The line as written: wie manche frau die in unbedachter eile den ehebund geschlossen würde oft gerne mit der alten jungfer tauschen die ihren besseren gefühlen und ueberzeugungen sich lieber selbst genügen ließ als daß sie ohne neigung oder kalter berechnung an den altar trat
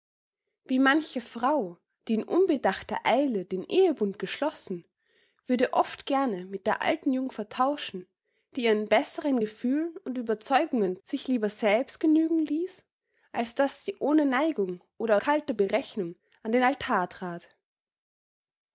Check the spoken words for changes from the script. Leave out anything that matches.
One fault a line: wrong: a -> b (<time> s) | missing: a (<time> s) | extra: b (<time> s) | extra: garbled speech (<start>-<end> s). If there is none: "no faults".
no faults